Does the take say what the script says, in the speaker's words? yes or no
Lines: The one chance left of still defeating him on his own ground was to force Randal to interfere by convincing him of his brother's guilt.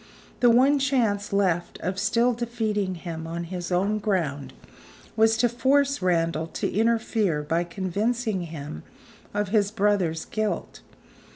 yes